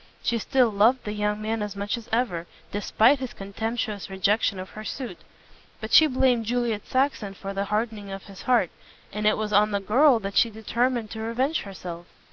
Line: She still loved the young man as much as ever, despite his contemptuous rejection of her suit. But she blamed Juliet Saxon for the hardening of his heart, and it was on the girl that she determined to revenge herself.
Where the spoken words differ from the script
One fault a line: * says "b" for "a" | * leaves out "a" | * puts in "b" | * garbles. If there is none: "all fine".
all fine